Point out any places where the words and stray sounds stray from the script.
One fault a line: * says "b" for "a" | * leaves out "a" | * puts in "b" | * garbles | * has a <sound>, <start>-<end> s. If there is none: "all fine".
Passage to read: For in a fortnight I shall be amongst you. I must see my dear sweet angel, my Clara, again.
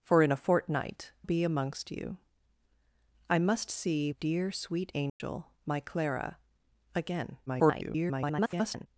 * leaves out "I shall"
* leaves out "my"
* has a dropout, 5.1-5.2 s
* garbles